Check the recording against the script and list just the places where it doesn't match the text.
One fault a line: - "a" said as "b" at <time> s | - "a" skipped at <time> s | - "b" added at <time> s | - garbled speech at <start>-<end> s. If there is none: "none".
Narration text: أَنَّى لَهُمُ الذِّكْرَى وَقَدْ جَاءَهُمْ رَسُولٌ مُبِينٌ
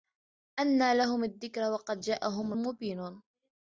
- "رَسُولٌ" skipped at 2.5 s